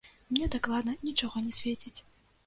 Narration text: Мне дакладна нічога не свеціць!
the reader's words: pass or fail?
pass